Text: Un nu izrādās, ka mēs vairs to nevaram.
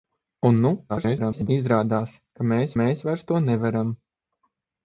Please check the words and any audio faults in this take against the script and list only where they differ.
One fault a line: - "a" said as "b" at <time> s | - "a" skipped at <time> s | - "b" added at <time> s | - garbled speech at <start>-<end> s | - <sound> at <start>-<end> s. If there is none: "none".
- garbled speech at 0.9-1.5 s
- "mēs" added at 2.8 s